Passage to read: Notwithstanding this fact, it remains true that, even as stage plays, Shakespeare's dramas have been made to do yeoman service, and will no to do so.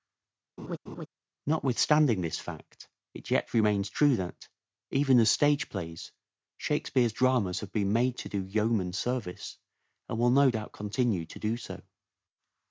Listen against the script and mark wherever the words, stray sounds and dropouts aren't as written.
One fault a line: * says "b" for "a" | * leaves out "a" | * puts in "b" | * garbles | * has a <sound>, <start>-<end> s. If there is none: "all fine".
* has a laugh, 0.6-1.1 s
* puts in "yet"
* puts in "doubt continue"